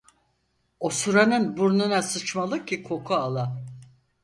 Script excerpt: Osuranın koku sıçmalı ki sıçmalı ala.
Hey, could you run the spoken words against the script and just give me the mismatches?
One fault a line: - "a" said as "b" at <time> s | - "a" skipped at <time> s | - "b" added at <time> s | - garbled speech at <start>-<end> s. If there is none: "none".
- "koku" said as "burnuna" at 1.6 s
- "sıçmalı" said as "koku" at 2.8 s